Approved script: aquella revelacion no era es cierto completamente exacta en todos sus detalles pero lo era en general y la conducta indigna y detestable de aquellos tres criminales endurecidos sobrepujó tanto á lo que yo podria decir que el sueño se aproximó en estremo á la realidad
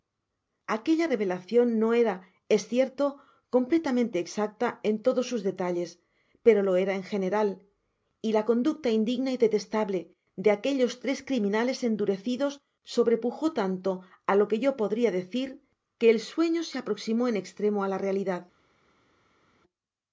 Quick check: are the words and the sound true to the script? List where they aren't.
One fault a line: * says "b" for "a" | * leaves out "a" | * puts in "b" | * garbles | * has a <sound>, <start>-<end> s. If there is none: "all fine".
all fine